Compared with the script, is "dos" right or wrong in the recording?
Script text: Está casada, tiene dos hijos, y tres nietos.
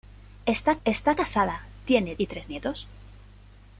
wrong